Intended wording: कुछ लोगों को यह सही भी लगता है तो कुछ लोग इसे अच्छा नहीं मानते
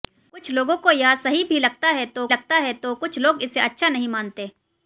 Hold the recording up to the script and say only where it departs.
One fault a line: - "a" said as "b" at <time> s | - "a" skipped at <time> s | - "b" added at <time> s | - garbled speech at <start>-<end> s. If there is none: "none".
- "लगता है तो" added at 2.3 s